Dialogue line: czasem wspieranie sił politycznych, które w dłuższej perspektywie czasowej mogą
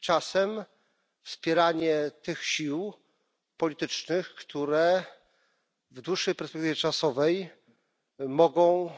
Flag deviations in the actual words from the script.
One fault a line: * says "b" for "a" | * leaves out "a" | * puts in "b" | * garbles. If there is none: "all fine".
* puts in "tych"